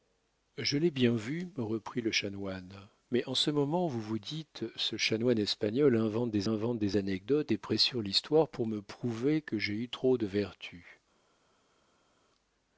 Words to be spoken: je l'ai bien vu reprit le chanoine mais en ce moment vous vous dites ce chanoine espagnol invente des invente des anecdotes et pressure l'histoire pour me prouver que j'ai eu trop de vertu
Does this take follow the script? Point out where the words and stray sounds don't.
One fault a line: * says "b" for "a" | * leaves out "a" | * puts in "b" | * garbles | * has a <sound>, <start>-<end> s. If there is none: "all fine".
all fine